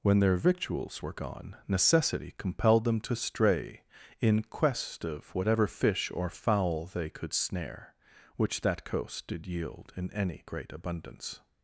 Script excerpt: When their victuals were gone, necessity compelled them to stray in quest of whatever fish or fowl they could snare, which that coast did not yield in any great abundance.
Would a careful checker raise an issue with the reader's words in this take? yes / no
yes